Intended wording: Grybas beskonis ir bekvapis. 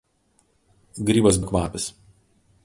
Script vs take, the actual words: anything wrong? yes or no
yes